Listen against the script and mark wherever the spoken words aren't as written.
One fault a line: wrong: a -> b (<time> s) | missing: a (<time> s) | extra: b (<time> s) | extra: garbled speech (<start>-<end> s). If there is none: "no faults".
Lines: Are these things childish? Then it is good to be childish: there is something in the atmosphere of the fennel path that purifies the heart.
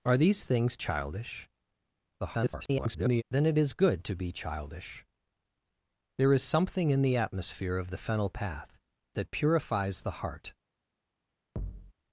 extra: garbled speech (2.2-3.2 s)